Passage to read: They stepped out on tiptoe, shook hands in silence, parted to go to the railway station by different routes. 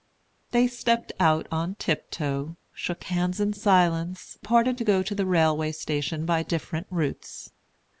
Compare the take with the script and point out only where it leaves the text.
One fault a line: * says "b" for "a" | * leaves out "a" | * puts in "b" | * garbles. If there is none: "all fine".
all fine